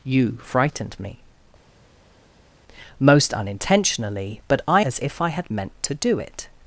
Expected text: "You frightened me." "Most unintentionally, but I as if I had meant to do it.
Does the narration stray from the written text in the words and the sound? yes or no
no